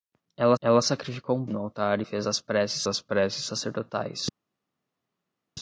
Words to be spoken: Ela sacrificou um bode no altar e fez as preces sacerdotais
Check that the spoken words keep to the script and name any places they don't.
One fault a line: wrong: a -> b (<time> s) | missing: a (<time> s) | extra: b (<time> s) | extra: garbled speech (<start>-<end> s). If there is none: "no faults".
extra: ela (0.6 s)
missing: bode (1.5 s)
extra: as preces (2.9 s)